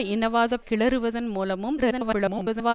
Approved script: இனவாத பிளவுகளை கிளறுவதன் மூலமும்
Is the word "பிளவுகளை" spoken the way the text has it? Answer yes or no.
no